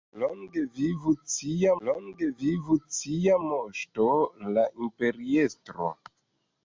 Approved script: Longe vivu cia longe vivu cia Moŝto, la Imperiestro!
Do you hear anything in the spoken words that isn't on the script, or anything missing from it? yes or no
no